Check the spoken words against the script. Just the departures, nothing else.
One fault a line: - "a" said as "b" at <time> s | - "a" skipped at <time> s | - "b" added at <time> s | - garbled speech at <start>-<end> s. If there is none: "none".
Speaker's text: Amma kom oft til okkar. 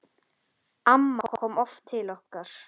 none